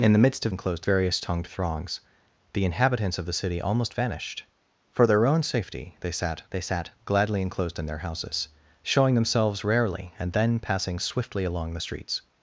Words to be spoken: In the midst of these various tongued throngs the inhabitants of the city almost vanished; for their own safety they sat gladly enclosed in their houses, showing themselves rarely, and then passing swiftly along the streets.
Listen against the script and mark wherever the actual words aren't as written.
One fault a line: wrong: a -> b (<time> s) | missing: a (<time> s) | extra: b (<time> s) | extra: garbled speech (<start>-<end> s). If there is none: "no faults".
wrong: these -> enclosed (0.5 s)
extra: they sat (6.5 s)